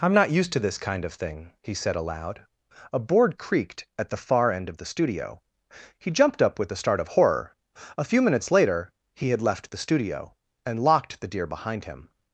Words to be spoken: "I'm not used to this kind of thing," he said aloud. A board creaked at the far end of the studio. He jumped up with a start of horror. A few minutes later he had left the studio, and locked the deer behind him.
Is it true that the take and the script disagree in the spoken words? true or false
false